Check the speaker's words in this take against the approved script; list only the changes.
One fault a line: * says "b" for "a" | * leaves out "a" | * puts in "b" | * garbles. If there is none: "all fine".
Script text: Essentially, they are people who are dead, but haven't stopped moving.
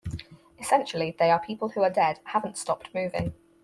* leaves out "but"